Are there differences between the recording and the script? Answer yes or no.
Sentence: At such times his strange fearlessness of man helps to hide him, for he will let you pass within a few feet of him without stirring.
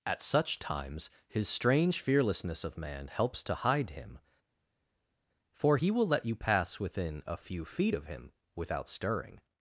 no